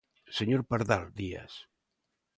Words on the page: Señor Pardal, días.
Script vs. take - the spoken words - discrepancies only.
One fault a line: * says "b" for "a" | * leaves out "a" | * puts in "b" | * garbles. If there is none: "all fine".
all fine